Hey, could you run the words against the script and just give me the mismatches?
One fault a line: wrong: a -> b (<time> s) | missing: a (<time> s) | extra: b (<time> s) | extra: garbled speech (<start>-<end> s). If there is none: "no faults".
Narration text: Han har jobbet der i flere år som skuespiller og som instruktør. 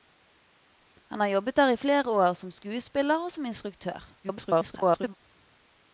extra: garbled speech (4.2-5.1 s)